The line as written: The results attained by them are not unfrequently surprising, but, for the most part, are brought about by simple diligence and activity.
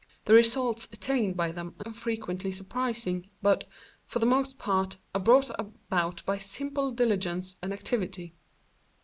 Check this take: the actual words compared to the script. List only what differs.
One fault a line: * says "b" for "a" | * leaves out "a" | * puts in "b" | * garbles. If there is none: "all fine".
* leaves out "not"